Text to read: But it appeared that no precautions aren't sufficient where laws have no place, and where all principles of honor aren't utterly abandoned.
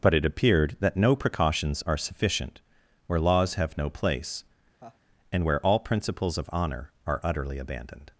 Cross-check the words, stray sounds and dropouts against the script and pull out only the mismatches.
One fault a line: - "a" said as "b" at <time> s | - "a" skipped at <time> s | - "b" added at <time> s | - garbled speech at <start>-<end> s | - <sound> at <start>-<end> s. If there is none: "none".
- "aren't" said as "are" at 1.9 s
- laugh at 4.8-5.0 s
- "aren't" said as "are" at 7.1 s